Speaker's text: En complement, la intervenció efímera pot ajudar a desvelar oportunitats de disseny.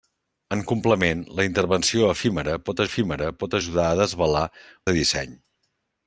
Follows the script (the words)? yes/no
no